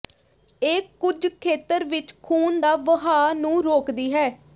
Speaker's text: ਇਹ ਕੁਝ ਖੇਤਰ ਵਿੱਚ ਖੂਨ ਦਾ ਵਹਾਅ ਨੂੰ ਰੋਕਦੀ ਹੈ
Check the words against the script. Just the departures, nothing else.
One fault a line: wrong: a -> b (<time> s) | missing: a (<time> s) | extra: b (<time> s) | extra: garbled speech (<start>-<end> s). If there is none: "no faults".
no faults